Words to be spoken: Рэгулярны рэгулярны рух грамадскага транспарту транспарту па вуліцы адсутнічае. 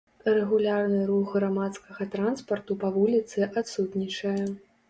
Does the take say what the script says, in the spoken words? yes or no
no